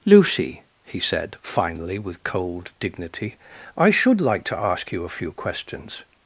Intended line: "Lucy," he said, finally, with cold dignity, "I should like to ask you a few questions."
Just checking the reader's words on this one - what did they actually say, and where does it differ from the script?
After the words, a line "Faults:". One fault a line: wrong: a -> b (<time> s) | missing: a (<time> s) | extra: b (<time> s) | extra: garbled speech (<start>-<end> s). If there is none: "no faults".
"Lucy," he said, finally, with cold dignity, "I should like to ask you a few questions."
Faults:
no faults